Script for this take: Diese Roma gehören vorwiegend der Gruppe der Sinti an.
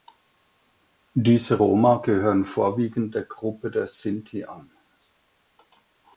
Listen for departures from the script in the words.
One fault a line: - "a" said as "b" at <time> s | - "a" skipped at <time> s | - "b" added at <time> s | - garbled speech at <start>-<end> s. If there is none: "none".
none